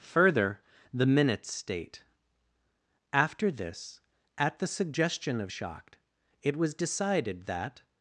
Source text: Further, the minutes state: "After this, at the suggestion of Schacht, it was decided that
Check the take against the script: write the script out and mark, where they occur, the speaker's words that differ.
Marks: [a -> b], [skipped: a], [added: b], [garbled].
Further, the minutes state: "After this, at the suggestion of Schacht, it was decided that